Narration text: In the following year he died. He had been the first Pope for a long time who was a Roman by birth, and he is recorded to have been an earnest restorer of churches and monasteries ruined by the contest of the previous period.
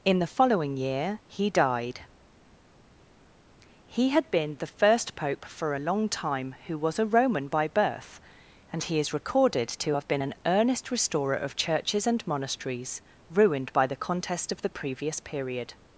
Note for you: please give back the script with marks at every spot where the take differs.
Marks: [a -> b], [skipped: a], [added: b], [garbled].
In the following year he died. He had been the first Pope for a long time who was a Roman by birth, and he is recorded to have been an earnest restorer of churches and monasteries ruined by the contest of the previous period.